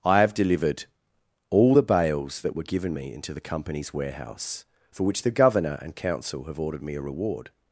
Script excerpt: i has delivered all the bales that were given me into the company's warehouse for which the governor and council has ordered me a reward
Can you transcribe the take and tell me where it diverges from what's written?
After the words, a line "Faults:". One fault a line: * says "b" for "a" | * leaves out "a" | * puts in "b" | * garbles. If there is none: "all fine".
i have delivered all the bales that were given me into the company's warehouse for which the governor and council have ordered me a reward
Faults:
* says "have" for "has"
* says "have" for "has"